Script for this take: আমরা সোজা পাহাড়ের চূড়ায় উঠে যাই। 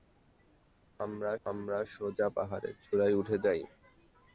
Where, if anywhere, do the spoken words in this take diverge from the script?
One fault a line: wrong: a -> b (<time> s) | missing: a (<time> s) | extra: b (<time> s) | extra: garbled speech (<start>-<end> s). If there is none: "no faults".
extra: আমরা (1.5 s)